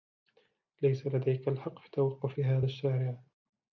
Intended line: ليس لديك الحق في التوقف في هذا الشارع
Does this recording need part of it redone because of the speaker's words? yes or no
no